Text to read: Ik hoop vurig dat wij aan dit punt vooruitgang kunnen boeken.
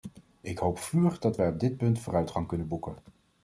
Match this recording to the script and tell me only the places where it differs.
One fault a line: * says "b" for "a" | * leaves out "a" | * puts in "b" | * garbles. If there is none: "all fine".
* says "op" for "aan"